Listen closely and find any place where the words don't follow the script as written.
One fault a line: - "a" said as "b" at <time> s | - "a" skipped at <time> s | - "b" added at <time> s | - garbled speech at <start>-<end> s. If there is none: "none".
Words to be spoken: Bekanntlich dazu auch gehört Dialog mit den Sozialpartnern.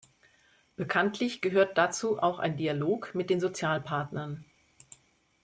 - "gehört" added at 1.4 s
- "gehört" said as "ein" at 2.4 s